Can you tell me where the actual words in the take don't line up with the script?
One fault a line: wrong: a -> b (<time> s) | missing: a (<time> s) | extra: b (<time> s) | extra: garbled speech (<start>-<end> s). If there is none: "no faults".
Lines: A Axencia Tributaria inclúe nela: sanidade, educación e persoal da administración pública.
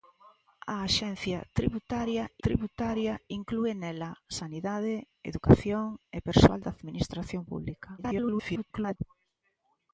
extra: Tributaria (2.4 s)
extra: garbled speech (8.0-9.0 s)